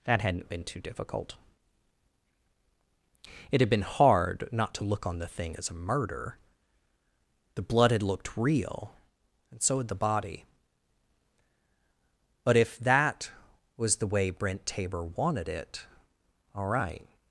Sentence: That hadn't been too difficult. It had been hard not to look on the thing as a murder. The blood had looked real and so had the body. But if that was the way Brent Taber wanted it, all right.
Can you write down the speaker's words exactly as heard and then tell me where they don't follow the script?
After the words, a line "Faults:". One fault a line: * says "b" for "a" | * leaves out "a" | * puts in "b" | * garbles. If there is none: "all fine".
That hadn't been too difficult. It had been hard not to look on the thing as a murder. The blood had looked real and so had the body. But if that was the way Brent Taber wanted it, all right.
Faults:
all fine